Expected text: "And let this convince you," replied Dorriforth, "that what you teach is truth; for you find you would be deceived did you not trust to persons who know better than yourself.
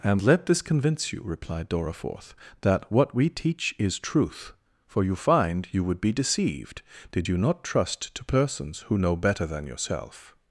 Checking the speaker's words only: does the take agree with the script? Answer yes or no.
no